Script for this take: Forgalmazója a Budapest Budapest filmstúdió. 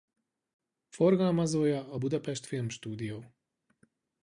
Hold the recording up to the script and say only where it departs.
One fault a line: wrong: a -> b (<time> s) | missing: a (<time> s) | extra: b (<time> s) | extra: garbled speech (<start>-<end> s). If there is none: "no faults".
missing: Budapest (2.5 s)